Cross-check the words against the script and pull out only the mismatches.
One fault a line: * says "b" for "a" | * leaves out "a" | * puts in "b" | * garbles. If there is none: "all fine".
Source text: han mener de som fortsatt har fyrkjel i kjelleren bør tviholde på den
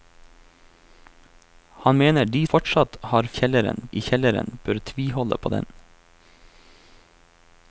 * leaves out "som"
* says "kjelleren" for "fyrkjel"